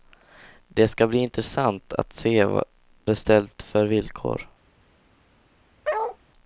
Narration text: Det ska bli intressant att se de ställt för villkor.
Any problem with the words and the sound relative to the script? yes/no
yes